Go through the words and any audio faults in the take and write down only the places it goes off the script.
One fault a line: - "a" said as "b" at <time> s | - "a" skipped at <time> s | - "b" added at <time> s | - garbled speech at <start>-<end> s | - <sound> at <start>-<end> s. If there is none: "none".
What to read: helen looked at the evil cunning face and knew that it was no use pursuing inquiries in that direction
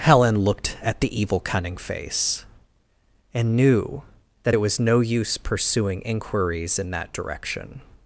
none